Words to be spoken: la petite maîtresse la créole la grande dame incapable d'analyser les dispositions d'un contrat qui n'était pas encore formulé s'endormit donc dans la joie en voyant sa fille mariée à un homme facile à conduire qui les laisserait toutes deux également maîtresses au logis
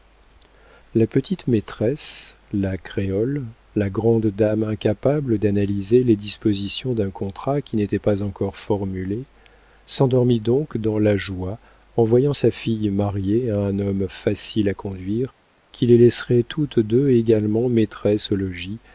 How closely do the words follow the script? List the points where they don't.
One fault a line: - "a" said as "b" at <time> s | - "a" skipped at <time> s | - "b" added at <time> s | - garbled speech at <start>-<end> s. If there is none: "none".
none